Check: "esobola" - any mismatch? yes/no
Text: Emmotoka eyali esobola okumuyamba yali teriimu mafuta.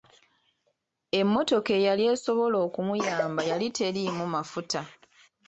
no